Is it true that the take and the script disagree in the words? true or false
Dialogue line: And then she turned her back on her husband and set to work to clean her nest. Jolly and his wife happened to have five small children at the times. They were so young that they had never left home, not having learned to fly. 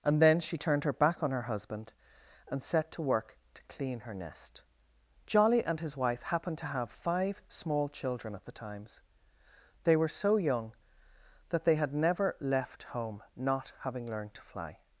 false